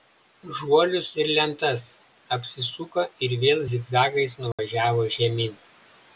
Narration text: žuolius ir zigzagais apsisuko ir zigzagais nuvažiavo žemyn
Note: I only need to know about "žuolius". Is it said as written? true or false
true